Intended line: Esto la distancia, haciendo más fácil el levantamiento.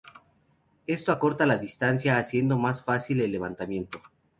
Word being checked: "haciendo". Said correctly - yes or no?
yes